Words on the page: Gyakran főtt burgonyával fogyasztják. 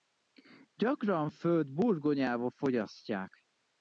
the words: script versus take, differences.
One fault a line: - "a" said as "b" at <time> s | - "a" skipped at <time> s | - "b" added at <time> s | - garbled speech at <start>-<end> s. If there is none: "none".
none